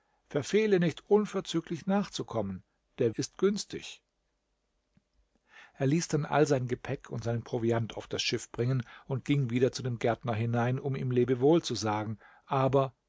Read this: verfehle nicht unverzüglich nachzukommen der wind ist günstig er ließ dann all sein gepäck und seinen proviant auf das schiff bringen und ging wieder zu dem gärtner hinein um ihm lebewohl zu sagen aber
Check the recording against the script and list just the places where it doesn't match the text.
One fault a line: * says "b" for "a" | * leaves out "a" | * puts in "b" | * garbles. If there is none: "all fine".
* leaves out "wind"